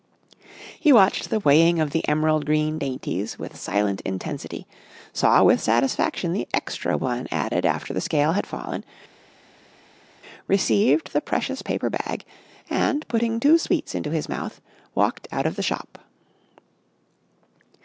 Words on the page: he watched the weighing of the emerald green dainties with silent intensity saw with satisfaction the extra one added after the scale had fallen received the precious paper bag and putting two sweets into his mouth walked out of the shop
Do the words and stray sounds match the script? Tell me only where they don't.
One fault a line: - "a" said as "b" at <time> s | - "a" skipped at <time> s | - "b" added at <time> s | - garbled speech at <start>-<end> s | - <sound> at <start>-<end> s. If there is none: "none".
none